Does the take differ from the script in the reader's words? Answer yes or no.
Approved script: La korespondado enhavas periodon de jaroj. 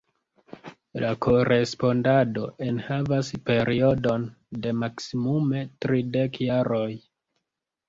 yes